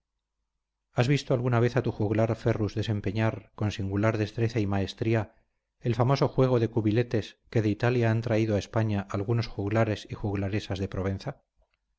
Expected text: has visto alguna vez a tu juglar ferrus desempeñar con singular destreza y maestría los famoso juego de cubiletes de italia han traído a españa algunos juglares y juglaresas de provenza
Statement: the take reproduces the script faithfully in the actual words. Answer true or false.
false